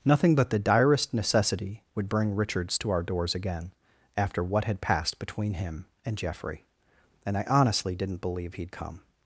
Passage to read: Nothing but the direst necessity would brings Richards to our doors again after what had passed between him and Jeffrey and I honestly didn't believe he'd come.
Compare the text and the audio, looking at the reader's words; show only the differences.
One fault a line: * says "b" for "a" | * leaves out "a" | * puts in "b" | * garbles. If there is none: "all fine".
* says "bring" for "brings"